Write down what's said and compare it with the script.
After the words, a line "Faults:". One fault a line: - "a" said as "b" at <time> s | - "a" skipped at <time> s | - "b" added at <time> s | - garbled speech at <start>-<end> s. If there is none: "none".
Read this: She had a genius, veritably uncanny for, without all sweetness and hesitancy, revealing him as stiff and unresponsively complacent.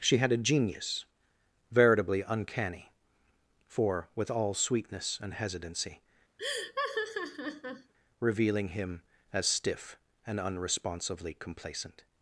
She had a genius, veritably uncanny for, with all sweetness and hesitancy, revealing him as stiff and unresponsively complacent.
Faults:
- "without" said as "with" at 4.1 s